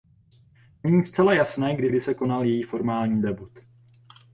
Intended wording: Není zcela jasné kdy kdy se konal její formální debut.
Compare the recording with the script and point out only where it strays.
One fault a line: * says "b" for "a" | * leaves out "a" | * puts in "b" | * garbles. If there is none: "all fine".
all fine